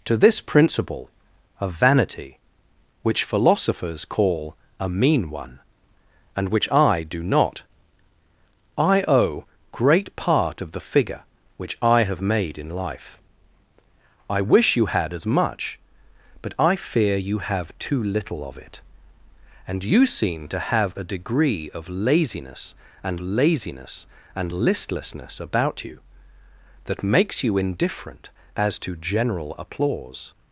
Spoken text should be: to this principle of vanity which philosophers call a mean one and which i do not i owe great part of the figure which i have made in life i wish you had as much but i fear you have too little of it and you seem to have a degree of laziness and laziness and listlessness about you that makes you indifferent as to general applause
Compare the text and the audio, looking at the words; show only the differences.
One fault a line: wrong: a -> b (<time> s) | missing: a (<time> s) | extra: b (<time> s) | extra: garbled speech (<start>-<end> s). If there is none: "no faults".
no faults